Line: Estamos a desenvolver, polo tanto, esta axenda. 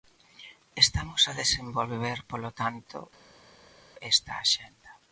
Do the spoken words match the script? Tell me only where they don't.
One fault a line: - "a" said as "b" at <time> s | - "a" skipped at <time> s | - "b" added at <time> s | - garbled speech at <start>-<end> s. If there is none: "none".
none